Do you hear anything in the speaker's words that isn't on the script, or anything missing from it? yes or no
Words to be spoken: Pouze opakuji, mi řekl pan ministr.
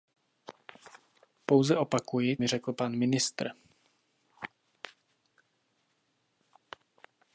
no